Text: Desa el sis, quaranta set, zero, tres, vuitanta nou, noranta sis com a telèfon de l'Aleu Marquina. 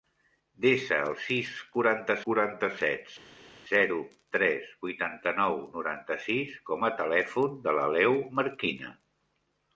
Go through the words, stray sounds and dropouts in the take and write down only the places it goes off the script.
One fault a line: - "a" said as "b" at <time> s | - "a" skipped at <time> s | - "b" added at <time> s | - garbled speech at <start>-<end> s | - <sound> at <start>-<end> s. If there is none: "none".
- "quaranta" added at 2.3 s